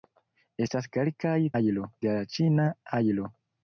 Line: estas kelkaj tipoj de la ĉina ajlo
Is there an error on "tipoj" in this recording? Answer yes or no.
yes